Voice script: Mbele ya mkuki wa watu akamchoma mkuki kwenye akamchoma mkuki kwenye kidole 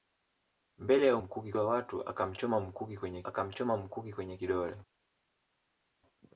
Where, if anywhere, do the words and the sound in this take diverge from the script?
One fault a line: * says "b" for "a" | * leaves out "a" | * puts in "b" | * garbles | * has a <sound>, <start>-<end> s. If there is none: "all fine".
all fine